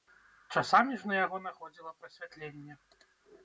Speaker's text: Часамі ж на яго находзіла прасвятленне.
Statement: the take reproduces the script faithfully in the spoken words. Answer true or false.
true